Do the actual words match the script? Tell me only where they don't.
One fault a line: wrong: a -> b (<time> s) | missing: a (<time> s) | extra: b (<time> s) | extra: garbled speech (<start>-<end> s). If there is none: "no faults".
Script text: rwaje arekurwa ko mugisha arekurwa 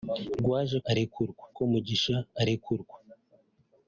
no faults